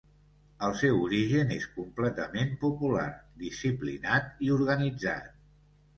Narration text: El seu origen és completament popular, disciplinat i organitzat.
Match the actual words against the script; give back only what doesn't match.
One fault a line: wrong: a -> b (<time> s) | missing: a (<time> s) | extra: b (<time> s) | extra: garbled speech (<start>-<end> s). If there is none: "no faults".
no faults